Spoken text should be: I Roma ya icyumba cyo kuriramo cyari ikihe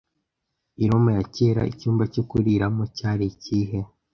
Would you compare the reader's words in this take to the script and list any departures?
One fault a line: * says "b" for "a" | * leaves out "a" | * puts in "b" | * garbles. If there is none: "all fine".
* puts in "kera"